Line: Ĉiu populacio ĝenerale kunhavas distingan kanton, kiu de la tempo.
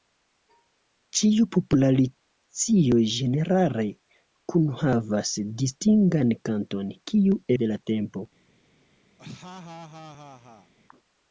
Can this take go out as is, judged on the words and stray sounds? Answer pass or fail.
fail